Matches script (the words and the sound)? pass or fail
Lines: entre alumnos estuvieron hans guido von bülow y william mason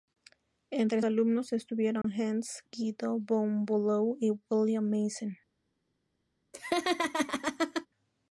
fail